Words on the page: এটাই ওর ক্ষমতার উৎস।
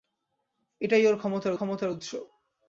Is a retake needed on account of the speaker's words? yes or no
yes